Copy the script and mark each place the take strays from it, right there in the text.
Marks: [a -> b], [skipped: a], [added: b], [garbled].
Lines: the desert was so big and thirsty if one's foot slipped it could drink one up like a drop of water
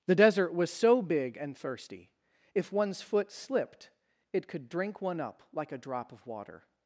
the desert was so big and thirsty if one's foot slipped it could drink one up like a drop of water